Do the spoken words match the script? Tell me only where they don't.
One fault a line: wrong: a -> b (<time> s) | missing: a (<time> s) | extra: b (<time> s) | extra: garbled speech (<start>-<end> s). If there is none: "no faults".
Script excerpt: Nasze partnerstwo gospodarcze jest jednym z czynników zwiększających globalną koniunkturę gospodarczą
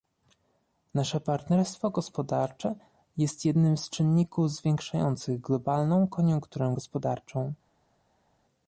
no faults